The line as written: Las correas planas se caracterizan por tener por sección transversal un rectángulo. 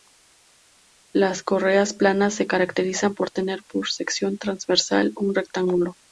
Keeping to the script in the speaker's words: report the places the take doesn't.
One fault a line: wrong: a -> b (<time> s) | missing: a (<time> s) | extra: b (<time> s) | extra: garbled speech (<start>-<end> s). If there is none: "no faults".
no faults